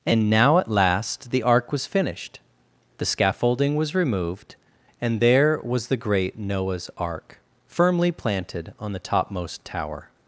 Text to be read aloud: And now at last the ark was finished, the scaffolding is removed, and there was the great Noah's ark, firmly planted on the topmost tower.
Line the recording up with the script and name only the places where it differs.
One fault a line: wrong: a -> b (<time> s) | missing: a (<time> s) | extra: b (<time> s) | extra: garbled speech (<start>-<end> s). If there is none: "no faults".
wrong: is -> was (3.7 s)